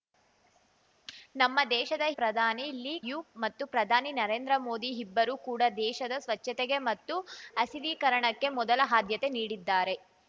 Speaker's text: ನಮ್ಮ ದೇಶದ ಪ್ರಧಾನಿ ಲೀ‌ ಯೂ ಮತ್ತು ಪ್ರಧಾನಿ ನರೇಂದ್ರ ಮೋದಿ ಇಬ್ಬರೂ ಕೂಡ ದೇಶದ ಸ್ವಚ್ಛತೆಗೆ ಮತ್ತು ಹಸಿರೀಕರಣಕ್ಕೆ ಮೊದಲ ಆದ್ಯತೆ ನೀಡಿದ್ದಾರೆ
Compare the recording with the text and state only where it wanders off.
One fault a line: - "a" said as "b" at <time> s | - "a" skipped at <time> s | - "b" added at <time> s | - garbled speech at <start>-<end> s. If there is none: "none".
none